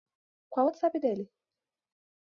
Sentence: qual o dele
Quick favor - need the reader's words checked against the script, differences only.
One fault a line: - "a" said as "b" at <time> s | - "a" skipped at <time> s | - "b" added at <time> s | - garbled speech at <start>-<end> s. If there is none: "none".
- "whatsapp" added at 0.7 s